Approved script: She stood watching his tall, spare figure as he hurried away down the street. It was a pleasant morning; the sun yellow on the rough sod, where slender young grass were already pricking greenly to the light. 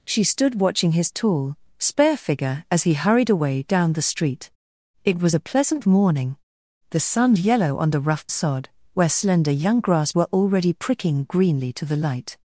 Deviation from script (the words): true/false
false